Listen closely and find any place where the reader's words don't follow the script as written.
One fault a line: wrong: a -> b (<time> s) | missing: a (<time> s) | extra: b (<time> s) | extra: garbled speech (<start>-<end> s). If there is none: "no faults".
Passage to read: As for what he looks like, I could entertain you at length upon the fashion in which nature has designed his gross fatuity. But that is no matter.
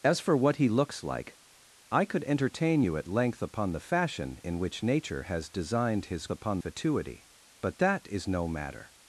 wrong: gross -> upon (6.3 s)